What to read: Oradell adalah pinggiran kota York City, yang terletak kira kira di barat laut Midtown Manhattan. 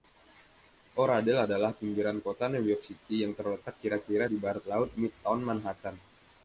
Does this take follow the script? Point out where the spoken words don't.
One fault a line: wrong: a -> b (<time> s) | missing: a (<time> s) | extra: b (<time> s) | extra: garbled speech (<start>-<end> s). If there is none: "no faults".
extra: New (2.5 s)